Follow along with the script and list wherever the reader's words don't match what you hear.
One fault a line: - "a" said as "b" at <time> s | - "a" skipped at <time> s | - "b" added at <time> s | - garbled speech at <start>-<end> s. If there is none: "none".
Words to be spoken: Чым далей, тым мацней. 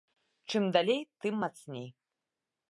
none